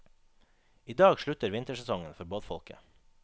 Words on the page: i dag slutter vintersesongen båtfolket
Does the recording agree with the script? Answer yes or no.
no